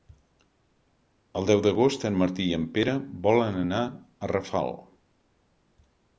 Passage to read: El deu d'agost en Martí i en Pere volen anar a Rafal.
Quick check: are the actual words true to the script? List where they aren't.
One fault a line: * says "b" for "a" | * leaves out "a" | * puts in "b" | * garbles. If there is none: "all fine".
all fine